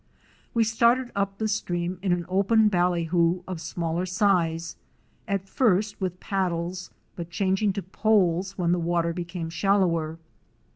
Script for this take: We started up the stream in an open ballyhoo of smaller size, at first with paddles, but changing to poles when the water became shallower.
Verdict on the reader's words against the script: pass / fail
pass